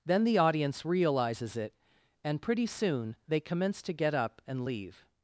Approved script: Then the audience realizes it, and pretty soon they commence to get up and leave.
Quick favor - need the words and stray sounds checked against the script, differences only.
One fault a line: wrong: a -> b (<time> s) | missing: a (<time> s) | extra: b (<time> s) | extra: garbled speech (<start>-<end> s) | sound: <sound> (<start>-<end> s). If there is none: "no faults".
no faults